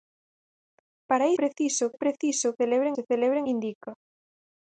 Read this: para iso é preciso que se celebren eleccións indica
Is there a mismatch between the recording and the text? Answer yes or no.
yes